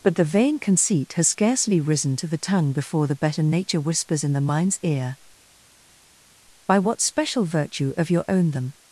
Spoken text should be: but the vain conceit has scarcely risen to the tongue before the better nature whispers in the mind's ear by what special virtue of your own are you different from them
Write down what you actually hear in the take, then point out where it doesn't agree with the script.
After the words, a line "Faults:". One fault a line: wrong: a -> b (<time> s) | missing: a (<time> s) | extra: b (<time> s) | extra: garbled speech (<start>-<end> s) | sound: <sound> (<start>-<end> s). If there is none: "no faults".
but the vain conceit has scarcely risen to the tongue before the better nature whispers in the mind's ear by what special virtue of your own them
Faults:
missing: are you different from (8.5 s)